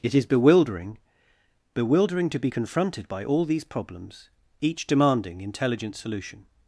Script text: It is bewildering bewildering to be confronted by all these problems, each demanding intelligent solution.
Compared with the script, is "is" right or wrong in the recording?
right